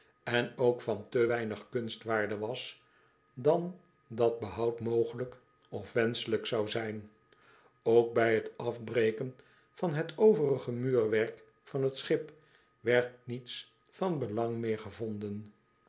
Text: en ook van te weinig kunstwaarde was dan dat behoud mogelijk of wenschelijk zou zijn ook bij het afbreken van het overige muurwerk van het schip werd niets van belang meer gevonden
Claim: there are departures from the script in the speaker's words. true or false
false